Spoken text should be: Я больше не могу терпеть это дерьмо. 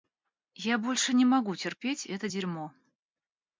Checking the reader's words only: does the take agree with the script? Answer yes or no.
yes